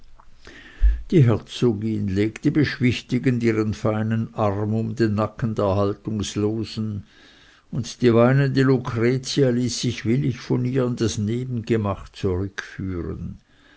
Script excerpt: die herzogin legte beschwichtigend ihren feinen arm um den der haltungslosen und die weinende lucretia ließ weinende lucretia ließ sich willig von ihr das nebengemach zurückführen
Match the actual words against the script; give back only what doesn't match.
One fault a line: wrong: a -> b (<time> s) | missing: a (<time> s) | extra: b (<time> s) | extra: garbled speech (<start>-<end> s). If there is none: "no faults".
extra: nacken (5.1 s)
missing: weinende lucretia ließ (9.8 s)
extra: in (10.9 s)